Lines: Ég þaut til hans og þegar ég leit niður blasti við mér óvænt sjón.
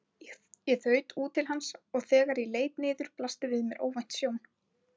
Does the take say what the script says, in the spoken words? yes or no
no